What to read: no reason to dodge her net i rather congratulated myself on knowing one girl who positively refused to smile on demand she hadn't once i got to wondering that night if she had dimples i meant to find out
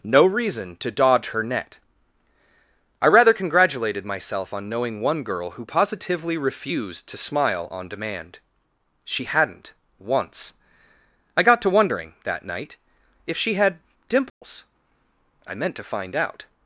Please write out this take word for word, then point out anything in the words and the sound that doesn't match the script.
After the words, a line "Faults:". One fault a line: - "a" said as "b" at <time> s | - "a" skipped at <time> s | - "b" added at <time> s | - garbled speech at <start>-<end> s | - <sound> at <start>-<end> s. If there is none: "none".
no reason to dodge her net i rather congratulated myself on knowing one girl who positively refused to smile on demand she hadn't once i got to wondering that night if she had dimples i meant to find out
Faults:
- dropout at 14.3-14.4 s